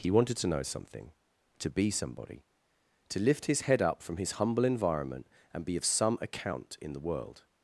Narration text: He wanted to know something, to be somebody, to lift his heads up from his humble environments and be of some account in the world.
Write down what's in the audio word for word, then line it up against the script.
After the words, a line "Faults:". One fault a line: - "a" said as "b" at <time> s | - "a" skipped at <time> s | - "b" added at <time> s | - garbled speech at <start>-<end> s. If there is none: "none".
He wanted to know something, to be somebody, to lift his head up from his humble environment and be of some account in the world.
Faults:
- "heads" said as "head" at 3.6 s
- "environments" said as "environment" at 4.6 s